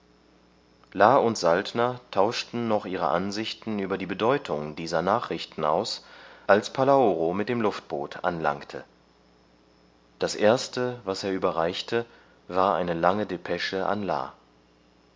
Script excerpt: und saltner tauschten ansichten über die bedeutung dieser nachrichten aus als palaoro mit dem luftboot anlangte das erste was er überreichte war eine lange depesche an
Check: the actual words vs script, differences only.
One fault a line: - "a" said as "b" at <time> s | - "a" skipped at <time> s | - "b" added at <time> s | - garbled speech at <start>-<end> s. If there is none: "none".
- "noch ihre" added at 2.7 s